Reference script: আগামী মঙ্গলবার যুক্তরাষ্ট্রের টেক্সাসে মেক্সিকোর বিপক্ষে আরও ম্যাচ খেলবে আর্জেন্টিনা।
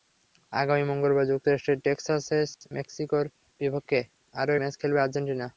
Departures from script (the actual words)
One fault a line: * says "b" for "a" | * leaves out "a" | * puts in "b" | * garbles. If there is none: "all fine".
all fine